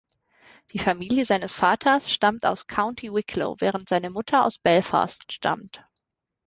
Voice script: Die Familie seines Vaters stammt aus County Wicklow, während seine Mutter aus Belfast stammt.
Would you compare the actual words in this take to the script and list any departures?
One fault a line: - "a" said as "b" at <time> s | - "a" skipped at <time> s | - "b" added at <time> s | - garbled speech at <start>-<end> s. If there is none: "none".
none